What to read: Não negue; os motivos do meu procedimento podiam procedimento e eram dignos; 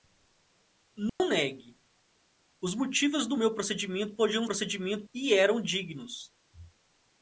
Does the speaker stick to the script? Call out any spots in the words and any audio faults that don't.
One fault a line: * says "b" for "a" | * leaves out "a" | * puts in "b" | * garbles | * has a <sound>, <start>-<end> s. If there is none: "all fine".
* has a dropout, 1.1-1.2 s